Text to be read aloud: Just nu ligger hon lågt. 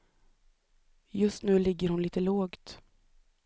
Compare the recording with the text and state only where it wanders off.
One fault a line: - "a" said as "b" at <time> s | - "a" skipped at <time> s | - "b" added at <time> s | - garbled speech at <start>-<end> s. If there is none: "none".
- "lite" added at 2.0 s